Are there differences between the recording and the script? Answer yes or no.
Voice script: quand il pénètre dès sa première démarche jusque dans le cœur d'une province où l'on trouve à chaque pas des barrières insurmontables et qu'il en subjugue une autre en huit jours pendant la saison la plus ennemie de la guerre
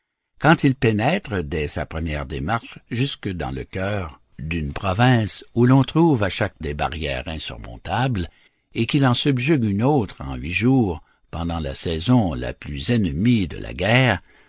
yes